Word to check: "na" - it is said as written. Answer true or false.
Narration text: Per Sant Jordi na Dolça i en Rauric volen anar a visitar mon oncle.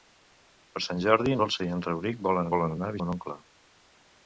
false